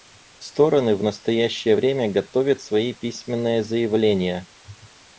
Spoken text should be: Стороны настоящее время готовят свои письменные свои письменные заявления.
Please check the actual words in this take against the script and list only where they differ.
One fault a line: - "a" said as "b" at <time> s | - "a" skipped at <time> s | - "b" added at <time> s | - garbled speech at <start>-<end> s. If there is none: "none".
- "в" added at 0.9 s
- "свои письменные" skipped at 3.6 s